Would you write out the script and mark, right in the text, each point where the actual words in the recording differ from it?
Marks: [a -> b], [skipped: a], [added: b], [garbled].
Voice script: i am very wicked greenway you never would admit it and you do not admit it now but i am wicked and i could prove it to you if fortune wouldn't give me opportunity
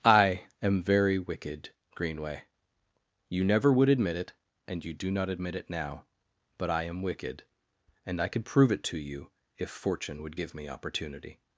i am very wicked greenway you never would admit it and you do not admit it now but i am wicked and i could prove it to you if fortune [wouldn't -> would] give me opportunity